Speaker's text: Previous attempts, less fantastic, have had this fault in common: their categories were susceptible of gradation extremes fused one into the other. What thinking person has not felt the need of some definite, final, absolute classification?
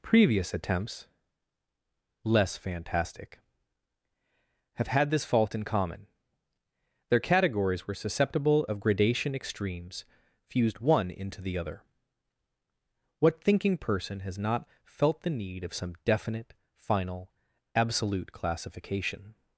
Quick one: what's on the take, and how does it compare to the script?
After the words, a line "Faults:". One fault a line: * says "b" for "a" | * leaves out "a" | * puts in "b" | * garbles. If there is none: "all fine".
Previous attempts, less fantastic, have had this fault in common: their categories were susceptible of gradation extremes fused one into the other. What thinking person has not felt the need of some definite, final, absolute classification?
Faults:
all fine